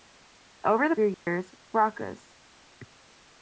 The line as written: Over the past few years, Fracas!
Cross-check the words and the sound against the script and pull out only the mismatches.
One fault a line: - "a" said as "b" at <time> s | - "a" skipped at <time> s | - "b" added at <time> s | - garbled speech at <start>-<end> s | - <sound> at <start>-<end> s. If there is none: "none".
- "past" skipped at 0.9 s
- dropout at 1.1-1.3 s